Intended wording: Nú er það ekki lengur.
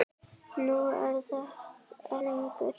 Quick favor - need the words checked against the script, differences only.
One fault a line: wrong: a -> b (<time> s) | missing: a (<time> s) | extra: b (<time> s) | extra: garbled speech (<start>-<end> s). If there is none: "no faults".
missing: ekki (2.2 s)